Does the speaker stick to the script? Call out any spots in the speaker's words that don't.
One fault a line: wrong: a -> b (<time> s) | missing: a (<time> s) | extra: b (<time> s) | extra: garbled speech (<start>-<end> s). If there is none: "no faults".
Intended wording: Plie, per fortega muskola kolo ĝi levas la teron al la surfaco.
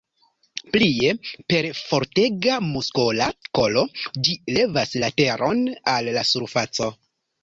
no faults